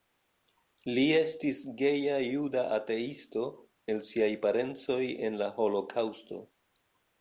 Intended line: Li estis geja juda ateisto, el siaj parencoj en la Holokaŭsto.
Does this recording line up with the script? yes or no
yes